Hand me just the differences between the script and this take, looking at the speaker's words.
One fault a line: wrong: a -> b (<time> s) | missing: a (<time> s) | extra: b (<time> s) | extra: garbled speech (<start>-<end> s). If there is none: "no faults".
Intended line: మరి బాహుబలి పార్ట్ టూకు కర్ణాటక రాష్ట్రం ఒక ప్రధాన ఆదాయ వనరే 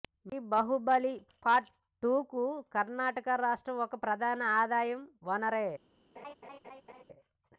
no faults